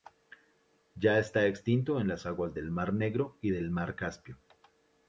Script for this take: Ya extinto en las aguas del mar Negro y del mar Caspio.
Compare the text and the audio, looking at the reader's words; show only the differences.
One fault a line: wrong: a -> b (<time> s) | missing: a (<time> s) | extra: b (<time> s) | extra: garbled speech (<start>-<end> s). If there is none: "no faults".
extra: está (1.2 s)